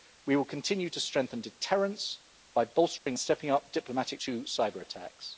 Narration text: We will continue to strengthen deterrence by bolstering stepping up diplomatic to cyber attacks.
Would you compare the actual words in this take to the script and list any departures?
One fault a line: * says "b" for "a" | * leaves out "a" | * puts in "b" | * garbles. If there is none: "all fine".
all fine